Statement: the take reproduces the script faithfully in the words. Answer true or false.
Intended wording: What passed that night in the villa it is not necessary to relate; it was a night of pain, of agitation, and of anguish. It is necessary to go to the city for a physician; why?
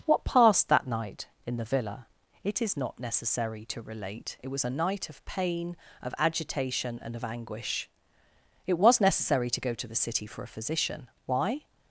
false